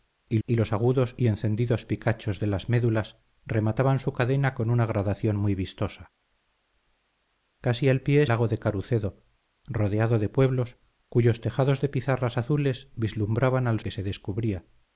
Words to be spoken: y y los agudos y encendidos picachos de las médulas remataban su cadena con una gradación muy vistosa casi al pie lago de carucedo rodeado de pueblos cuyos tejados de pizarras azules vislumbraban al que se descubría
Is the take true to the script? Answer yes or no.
yes